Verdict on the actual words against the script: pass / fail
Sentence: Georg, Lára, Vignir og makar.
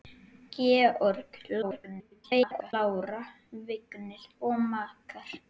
fail